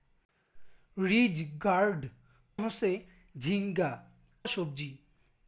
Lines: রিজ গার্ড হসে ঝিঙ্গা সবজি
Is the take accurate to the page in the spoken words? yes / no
yes